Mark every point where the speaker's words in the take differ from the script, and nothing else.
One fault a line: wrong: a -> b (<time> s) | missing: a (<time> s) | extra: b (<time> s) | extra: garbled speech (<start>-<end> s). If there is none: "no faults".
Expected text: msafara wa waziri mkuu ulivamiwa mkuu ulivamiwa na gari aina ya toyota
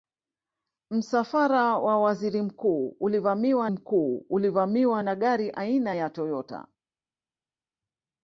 no faults